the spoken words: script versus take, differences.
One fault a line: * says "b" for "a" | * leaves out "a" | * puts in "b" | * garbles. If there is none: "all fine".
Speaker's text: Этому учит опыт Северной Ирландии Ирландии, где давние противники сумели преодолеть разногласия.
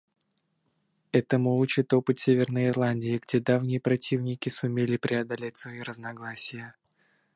* leaves out "Ирландии"
* puts in "свои"